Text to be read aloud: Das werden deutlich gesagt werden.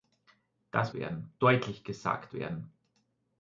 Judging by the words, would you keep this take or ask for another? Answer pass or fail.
pass